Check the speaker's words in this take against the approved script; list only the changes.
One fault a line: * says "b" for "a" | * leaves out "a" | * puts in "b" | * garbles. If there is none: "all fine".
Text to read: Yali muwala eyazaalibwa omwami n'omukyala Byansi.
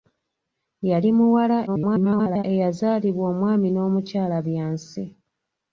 * garbles